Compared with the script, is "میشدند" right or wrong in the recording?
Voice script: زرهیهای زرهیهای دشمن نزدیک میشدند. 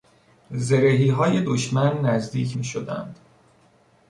right